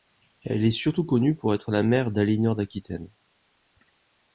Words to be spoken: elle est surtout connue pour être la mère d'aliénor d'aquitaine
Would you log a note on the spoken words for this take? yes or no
no